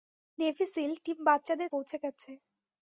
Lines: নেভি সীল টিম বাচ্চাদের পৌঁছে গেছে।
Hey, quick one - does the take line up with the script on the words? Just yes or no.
yes